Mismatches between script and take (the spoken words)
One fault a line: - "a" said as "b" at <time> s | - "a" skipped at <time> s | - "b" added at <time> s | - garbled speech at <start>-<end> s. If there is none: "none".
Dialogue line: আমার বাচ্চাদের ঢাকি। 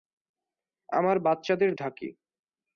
none